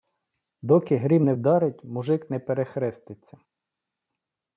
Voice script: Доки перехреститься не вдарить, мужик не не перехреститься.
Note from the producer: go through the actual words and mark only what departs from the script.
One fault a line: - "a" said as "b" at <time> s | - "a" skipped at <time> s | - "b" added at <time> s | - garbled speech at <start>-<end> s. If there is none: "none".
- "перехреститься" said as "грім" at 1.0 s
- "не" skipped at 2.4 s